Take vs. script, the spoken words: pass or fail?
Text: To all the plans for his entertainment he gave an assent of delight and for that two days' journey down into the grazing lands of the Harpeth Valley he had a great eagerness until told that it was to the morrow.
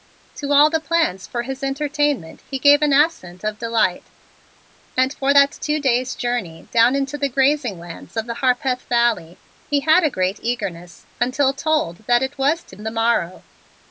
pass